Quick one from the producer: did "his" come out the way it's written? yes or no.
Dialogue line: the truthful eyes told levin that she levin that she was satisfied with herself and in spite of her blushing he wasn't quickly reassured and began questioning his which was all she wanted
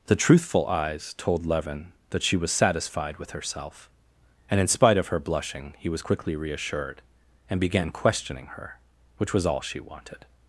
no